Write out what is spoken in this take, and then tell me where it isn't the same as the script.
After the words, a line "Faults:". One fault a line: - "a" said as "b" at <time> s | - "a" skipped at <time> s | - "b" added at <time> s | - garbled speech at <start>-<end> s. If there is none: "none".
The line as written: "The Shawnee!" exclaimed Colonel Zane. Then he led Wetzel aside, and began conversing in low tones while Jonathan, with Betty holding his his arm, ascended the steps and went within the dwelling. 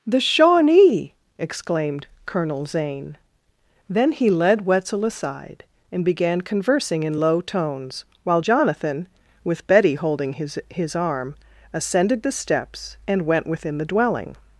"The Shawnee!" exclaimed Colonel Zane. Then he led Wetzel aside, and began conversing in low tones while Jonathan, with Betty holding his his arm, ascended the steps and went within the dwelling.
Faults:
none